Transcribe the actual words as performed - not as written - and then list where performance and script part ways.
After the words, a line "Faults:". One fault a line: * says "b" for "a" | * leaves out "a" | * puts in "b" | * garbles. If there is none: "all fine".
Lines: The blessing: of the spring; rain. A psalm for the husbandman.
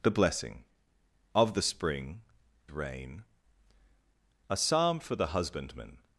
The blessing: of the spring; rain. A psalm for the husbandman.
Faults:
all fine